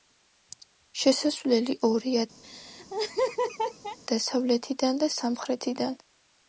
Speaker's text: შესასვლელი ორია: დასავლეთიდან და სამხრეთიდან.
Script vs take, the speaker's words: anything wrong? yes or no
no